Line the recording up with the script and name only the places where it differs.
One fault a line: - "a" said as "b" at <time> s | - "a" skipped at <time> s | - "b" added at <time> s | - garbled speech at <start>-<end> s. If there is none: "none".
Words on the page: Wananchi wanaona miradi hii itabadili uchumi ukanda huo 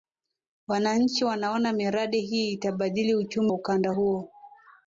none